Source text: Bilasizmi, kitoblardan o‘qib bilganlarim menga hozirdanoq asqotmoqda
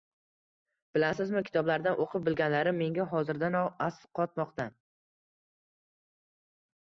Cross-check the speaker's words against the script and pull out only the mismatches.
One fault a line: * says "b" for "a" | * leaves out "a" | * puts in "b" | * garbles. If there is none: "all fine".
all fine